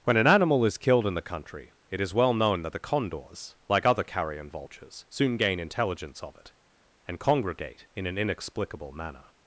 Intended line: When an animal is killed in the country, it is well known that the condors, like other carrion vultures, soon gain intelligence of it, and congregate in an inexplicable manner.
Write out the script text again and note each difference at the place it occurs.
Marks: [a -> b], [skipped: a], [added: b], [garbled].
When an animal is killed in the country, it is well known that the condors, like other carrion vultures, soon gain intelligence of it, and congregate in an inexplicable manner.